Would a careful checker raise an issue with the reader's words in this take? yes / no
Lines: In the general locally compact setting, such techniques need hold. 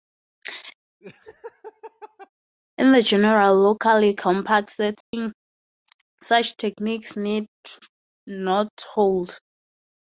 yes